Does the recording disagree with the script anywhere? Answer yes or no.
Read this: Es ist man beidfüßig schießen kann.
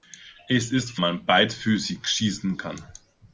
no